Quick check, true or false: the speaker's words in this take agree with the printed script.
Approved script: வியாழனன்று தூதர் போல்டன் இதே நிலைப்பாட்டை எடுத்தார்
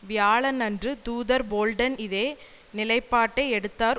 true